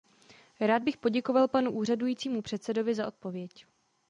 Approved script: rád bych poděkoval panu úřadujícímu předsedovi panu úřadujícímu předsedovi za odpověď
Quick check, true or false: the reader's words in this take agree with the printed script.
false